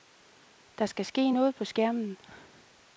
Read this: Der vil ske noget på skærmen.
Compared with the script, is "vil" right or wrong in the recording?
wrong